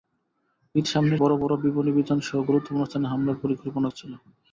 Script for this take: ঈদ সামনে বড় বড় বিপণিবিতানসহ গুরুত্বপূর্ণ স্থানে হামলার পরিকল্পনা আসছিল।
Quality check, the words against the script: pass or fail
pass